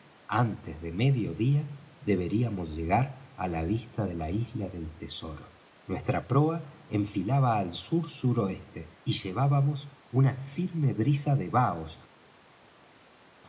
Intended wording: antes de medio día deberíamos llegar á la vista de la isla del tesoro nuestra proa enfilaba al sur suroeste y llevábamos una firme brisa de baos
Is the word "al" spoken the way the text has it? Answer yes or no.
yes